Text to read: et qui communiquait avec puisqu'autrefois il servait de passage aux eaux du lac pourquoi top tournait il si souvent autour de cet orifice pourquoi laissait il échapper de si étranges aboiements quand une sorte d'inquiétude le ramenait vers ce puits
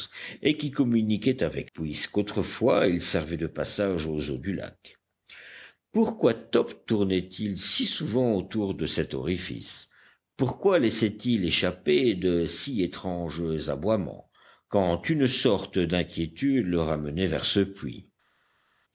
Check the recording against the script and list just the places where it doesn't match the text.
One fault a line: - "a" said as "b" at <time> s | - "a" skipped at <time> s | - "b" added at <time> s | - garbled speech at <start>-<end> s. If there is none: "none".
none